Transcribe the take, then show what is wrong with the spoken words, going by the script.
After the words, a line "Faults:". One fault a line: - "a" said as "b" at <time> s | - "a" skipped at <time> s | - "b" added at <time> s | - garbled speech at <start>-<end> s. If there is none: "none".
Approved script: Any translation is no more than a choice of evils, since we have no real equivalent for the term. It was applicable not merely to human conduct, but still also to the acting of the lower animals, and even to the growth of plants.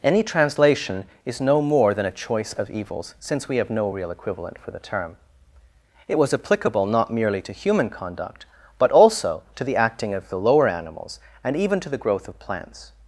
Any translation is no more than a choice of evils, since we have no real equivalent for the term. It was applicable not merely to human conduct, but also to the acting of the lower animals, and even to the growth of plants.
Faults:
- "still" skipped at 8.9 s